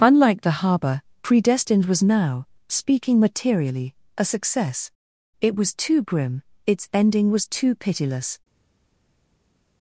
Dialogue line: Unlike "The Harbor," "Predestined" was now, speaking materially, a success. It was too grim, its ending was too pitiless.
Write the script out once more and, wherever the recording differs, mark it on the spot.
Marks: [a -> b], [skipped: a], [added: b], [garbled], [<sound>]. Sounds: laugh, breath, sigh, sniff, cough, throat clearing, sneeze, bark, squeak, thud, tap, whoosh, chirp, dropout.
Unlike "The Harbor," "Predestined" was now, speaking materially, a success. It was too grim, its ending was too pitiless.